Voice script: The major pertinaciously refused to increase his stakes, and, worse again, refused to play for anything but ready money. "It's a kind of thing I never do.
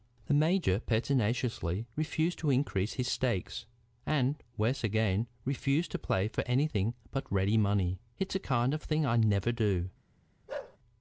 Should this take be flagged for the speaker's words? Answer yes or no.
no